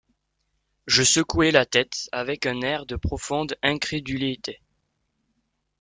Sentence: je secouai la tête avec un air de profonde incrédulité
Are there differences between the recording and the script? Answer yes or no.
no